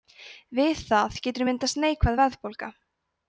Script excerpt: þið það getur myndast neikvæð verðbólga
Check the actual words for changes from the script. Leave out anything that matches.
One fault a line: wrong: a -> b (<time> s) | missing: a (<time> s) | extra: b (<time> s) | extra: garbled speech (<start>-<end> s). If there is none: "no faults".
wrong: þið -> við (0.6 s)